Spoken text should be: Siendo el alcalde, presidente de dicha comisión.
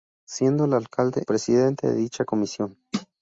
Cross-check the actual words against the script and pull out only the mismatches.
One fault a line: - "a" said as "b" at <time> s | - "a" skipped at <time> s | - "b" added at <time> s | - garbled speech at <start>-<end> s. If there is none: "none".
none